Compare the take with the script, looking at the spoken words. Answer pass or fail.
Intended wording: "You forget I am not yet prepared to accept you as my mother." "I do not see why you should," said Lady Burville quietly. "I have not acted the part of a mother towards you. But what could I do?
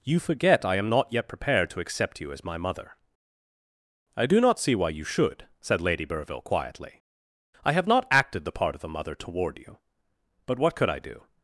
fail